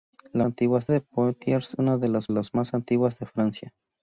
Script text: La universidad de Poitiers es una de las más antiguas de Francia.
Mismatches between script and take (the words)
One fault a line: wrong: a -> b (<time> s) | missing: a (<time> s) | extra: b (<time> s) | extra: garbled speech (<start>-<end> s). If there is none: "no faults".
wrong: universidad -> antiguas (0.4 s)
missing: es (1.7 s)
extra: las (2.3 s)